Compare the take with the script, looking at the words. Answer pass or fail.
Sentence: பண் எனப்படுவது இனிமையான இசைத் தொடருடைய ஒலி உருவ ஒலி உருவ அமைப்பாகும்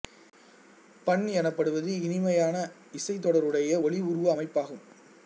fail